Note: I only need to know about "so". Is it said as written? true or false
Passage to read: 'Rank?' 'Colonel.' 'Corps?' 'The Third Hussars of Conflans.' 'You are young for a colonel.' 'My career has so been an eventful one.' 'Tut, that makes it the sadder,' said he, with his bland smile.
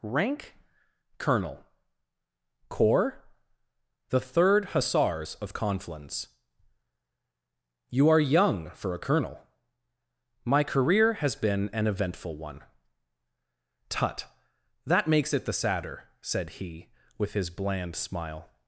false